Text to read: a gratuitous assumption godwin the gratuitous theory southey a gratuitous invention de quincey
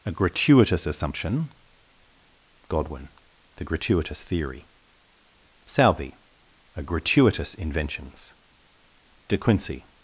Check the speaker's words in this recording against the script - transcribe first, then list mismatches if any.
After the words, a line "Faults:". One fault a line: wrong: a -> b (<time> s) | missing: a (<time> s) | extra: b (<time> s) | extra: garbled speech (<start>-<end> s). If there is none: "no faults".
a gratuitous assumption godwin the gratuitous theory southey a gratuitous inventions de quincey
Faults:
wrong: invention -> inventions (7.5 s)